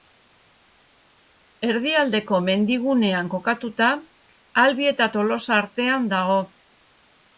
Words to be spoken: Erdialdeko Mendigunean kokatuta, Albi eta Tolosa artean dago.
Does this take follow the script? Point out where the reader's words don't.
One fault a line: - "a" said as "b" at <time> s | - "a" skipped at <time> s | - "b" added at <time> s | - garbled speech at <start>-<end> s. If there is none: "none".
none